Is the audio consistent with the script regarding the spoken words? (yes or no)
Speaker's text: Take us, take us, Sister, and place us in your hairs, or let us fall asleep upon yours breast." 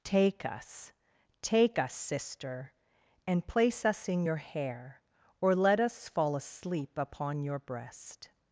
no